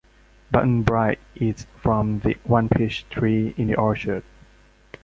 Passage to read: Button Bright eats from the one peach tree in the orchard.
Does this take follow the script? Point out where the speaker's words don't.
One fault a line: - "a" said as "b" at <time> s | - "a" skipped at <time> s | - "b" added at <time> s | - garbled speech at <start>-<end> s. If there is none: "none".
none